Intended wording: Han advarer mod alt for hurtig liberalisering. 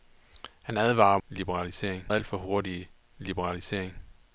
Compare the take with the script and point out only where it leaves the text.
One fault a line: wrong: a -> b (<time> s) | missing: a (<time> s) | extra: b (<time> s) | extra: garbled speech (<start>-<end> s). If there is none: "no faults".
wrong: mod -> liberalisering (1.3 s)